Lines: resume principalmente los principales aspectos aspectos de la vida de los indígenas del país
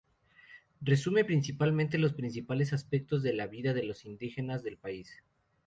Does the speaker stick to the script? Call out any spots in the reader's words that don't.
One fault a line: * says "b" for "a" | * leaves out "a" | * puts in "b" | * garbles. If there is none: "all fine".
* leaves out "aspectos"